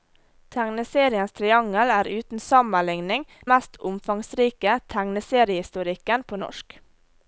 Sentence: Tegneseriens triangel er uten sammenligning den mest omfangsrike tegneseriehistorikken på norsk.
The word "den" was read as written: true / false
false